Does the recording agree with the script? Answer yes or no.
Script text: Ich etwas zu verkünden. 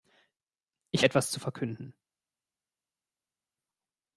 yes